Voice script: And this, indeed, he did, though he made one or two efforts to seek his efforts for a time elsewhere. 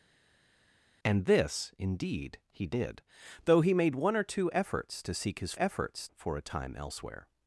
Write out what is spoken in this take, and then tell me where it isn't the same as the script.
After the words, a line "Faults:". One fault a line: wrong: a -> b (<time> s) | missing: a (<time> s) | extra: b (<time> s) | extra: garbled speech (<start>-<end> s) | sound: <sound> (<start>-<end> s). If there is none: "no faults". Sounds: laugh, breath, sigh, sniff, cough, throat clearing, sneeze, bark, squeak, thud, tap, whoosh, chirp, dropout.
And this, indeed, he did, though he made one or two efforts to seek his efforts for a time elsewhere.
Faults:
no faults